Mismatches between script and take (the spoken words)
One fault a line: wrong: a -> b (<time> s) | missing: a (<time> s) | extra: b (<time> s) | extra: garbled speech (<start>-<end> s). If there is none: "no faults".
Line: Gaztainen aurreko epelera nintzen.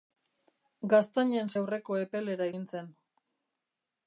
no faults